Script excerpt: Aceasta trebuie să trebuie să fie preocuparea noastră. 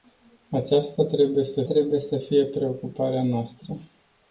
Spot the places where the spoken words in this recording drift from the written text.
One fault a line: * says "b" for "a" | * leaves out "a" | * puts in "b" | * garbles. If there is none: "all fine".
all fine